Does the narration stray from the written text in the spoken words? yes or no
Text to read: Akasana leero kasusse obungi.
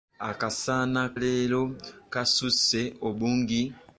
no